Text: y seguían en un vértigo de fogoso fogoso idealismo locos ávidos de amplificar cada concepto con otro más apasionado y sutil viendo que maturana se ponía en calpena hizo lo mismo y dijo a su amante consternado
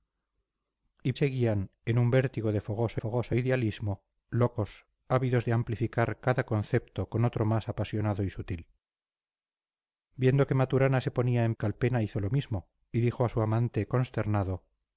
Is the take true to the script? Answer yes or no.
yes